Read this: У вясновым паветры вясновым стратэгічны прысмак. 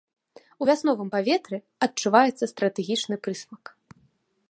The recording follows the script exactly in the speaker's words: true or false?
false